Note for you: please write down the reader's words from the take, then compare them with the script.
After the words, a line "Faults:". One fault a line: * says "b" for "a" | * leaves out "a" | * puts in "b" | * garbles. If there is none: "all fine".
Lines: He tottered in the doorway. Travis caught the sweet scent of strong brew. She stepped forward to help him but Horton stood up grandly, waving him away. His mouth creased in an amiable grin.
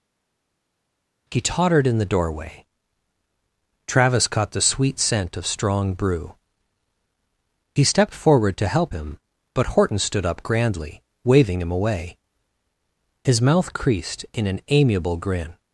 He tottered in the doorway. Travis caught the sweet scent of strong brew. He stepped forward to help him but Horton stood up grandly, waving him away. His mouth creased in an amiable grin.
Faults:
* says "He" for "She"